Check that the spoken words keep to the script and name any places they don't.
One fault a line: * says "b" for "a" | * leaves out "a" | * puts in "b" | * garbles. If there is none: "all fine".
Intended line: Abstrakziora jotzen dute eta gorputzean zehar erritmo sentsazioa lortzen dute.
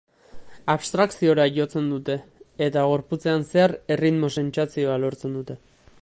all fine